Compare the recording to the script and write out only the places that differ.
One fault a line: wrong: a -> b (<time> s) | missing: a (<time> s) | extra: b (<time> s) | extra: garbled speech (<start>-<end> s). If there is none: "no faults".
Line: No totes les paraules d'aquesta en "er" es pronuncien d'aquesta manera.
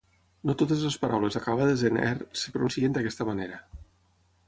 wrong: d'aquesta -> acabades (1.4 s)